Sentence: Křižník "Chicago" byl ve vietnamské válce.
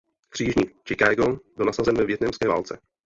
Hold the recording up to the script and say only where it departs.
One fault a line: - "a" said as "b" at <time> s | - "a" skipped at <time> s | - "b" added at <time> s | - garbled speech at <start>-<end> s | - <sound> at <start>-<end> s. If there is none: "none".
- "nasazen" added at 1.6 s